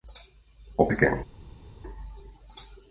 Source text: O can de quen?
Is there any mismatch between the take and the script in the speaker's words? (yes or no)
yes